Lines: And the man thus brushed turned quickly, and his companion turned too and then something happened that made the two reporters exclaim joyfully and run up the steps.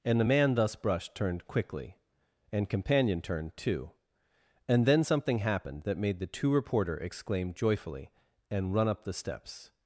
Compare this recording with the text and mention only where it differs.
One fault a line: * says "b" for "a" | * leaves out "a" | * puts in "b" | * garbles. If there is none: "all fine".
* leaves out "his"
* says "reporter" for "reporters"